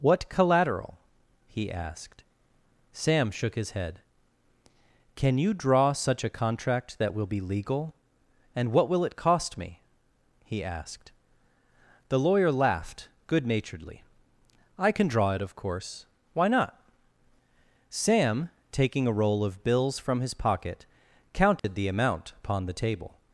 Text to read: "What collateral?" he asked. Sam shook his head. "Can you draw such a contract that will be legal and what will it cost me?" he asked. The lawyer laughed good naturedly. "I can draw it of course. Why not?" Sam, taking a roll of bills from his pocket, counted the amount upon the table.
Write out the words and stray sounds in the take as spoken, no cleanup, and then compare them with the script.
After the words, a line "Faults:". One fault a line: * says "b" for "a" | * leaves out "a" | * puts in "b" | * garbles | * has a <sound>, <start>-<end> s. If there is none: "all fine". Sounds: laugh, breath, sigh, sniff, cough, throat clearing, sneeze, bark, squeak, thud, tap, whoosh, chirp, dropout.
"What collateral?" he asked. Sam shook his head. "Can you draw such a contract that will be legal and what will it cost me?" he asked. The lawyer laughed good naturedly. "I can draw it of course. Why not?" Sam, taking a roll of bills from his pocket, counted the amount upon the table.
Faults:
* has a dropout, 21.6-21.6 s